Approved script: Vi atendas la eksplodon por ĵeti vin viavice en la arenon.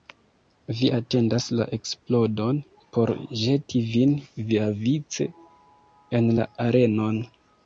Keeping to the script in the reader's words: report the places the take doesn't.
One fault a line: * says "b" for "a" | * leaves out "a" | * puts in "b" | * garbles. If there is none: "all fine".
all fine